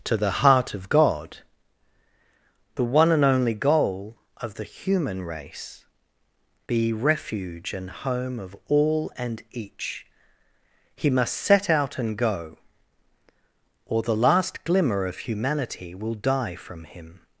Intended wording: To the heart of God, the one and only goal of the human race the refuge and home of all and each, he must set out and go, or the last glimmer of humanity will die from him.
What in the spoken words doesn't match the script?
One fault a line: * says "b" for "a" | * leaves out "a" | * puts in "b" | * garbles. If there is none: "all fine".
* says "be" for "the"